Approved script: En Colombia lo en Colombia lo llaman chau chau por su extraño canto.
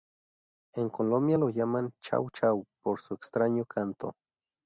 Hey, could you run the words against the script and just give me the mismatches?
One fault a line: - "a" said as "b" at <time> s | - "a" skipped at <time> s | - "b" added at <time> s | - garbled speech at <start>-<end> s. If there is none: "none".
- "en Colombia lo" skipped at 1.5 s